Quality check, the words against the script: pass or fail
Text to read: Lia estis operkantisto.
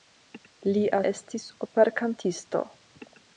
pass